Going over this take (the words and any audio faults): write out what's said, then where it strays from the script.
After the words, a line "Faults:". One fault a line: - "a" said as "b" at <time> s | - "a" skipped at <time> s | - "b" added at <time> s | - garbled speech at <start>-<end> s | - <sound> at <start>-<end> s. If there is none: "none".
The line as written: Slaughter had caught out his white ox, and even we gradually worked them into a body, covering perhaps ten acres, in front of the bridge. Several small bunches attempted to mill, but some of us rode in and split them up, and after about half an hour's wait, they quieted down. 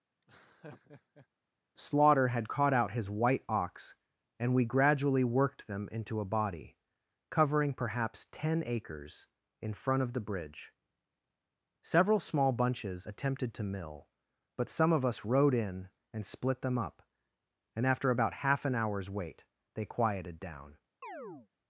Slaughter had caught out his white ox, and we gradually worked them into a body, covering perhaps ten acres, in front of the bridge. Several small bunches attempted to mill, but some of us rode in and split them up, and after about half an hour's wait, they quieted down.
Faults:
- laugh at 0.2-1.3 s
- "even" skipped at 4.5 s
- chirp at 21.0-21.5 s